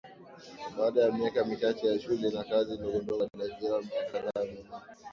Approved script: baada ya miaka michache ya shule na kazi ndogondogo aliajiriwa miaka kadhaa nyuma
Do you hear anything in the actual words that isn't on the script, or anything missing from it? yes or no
no